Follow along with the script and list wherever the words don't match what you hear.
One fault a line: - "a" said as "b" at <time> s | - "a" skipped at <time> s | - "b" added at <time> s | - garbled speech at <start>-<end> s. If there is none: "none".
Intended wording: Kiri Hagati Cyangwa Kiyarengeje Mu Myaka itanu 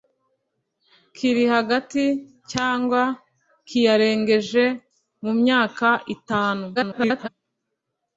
- garbled speech at 6.7-7.3 s